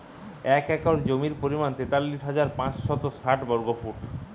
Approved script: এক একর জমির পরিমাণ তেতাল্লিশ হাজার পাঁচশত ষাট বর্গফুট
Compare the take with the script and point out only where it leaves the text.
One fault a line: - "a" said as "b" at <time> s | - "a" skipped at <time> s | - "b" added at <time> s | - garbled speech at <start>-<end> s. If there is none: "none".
none